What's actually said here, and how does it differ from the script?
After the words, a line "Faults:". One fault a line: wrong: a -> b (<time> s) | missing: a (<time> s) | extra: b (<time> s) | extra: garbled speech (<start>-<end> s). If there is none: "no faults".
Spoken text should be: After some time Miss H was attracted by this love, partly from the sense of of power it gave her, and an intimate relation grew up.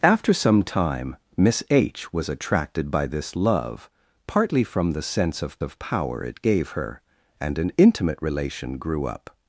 After some time Miss H was attracted by this love, partly from the sense of of power it gave her, and an intimate relation grew up.
Faults:
no faults